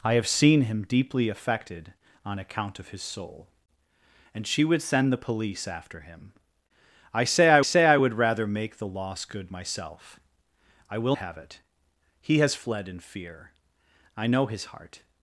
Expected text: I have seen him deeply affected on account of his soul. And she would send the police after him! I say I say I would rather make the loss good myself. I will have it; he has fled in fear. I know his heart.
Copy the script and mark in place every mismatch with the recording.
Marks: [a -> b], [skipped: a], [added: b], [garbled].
I have seen him deeply affected on account of his soul. And she would send the police after him! I say I say I would rather make the loss good myself. I will have it; he has fled in fear. I know his heart.